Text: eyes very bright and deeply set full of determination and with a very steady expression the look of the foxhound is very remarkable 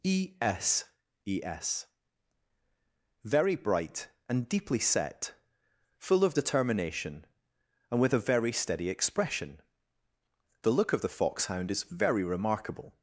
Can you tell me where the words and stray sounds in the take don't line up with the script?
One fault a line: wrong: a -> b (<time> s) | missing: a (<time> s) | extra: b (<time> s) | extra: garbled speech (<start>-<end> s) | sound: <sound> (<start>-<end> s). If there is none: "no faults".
wrong: eyes -> e s e s (0.0 s)